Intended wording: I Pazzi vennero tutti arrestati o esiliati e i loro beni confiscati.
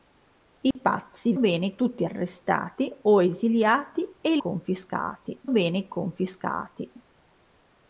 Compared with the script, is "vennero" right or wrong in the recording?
wrong